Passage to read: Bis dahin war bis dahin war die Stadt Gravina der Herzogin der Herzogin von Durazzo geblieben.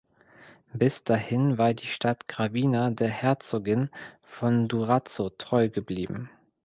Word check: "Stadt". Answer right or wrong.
right